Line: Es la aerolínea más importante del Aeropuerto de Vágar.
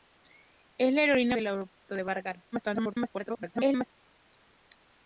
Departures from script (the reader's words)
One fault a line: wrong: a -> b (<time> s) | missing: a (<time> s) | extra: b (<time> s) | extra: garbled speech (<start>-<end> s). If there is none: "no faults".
missing: más importante (1.4 s)
extra: garbled speech (2.5-3.9 s)